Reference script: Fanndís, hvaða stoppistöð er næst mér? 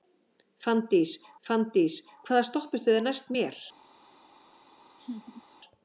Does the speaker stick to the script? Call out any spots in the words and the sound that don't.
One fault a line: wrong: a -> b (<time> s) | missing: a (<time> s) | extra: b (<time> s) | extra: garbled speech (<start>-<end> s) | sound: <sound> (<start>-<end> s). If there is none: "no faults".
extra: fanndís (1.5 s)
sound: laugh (5.0-5.4 s)